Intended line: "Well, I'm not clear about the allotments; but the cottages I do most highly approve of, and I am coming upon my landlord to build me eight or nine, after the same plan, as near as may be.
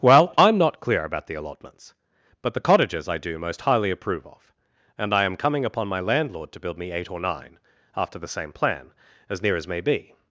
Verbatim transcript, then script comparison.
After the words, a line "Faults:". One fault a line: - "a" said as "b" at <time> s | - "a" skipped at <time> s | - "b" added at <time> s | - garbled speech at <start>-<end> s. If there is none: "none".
"Well, I'm not clear about the allotments; but the cottages I do most highly approve of, and I am coming upon my landlord to build me eight or nine, after the same plan, as near as may be.
Faults:
none